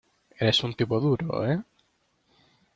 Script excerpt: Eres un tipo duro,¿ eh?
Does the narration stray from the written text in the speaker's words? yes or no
no